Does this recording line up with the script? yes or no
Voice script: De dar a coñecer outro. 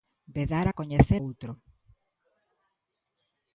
yes